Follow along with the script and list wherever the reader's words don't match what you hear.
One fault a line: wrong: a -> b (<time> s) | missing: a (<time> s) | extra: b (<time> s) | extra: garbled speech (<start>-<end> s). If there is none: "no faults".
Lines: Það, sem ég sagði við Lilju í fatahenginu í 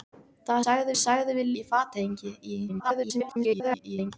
wrong: sem -> sagði (0.6 s)
missing: Lilju (1.5 s)
extra: garbled speech (2.7-4.1 s)